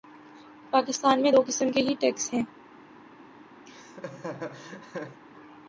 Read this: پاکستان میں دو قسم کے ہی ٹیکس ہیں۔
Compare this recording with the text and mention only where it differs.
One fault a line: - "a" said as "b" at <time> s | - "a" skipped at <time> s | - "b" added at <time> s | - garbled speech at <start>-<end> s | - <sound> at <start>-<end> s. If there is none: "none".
- laugh at 3.7-5.2 s